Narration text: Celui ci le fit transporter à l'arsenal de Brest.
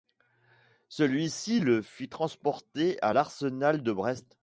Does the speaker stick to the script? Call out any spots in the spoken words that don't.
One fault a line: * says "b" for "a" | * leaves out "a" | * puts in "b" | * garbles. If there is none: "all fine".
all fine